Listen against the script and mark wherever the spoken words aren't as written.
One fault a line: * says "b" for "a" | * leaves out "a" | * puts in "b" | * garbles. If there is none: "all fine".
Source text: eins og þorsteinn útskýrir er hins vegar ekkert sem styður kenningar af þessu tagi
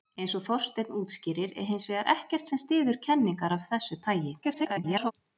* garbles